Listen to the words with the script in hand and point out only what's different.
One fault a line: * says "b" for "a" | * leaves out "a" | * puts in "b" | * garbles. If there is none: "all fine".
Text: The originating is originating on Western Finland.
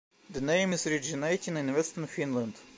* says "name" for "originating"
* says "in" for "on"